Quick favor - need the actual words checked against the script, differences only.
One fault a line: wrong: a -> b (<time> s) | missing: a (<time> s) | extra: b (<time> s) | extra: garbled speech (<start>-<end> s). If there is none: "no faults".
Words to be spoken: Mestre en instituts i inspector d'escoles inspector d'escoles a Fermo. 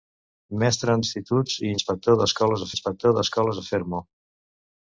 no faults